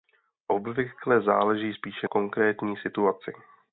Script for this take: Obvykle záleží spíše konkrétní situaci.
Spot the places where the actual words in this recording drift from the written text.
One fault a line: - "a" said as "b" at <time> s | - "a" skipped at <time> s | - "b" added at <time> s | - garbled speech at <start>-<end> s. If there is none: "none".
none